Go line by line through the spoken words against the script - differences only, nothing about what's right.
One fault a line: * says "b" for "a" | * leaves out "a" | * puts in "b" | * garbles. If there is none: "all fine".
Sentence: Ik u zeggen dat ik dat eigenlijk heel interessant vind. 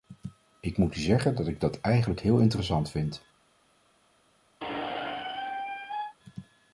* puts in "moet"